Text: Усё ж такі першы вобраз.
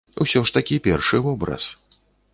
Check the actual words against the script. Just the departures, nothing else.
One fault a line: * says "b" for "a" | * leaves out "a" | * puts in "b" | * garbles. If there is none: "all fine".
all fine